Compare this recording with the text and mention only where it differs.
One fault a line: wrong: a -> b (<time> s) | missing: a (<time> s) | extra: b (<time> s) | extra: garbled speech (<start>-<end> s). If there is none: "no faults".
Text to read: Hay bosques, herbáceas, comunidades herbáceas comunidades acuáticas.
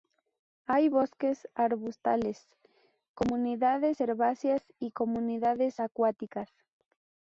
wrong: herbáceas -> arbustales (1.5 s)
extra: y (4.8 s)